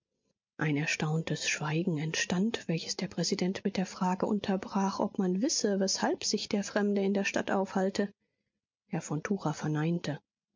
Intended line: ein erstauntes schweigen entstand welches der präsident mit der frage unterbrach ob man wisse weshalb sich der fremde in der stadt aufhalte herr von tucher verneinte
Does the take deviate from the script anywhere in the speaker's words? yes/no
no